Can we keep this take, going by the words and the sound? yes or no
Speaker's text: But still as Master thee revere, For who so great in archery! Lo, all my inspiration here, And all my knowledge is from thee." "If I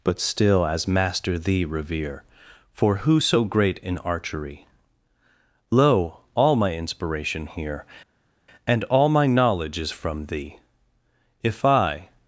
yes